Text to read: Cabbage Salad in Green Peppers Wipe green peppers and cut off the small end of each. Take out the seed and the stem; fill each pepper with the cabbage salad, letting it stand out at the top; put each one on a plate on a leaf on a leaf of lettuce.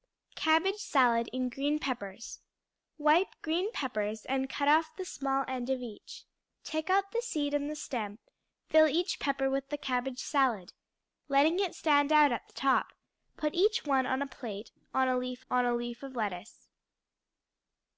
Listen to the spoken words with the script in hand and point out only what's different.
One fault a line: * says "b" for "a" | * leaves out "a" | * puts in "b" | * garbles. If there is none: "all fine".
all fine